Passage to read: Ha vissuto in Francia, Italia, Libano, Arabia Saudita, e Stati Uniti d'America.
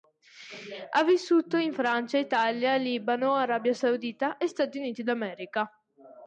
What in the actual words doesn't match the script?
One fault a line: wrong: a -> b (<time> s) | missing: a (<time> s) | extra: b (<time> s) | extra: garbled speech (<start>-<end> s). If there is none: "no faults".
no faults